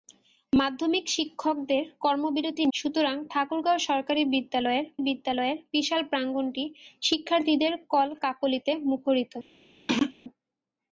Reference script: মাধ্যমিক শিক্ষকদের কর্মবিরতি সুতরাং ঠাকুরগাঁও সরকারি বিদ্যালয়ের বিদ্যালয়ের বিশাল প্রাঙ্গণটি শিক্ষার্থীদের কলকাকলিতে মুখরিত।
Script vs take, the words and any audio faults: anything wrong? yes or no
yes